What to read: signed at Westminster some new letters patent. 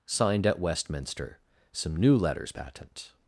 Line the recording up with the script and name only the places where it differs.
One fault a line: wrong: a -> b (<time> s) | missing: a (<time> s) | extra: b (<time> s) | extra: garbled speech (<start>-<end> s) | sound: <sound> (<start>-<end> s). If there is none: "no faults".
no faults